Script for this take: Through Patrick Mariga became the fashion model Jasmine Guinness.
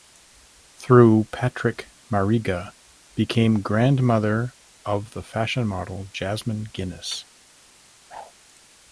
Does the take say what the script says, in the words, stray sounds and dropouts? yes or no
no